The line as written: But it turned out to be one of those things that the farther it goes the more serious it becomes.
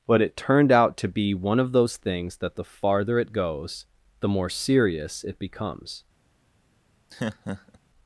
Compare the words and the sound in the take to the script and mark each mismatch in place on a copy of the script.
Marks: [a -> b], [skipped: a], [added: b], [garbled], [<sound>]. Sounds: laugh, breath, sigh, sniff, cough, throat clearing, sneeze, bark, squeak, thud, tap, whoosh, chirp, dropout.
But it turned out to be one of those things that the farther it goes the more serious it becomes. [laugh]